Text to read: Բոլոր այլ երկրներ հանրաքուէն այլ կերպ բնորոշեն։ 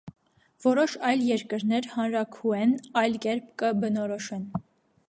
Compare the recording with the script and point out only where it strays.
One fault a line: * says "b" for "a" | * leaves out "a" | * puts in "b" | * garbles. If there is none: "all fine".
* says "Որոշ" for "Բոլոր"
* puts in "կը"